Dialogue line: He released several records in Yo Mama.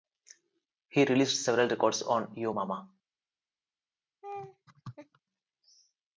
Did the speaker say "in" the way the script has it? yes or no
no